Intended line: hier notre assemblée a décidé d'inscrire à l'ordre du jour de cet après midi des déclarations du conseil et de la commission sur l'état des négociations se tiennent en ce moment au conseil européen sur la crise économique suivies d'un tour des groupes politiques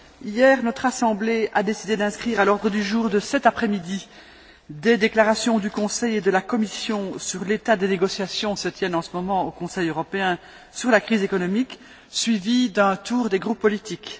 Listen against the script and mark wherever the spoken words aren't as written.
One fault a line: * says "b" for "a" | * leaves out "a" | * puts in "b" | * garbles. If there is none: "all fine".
all fine